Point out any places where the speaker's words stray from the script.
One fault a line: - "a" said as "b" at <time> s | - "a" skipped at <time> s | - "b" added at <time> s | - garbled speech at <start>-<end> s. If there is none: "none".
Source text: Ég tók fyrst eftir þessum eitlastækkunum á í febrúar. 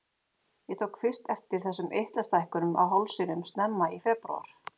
- "hálsinum snemma" added at 3.0 s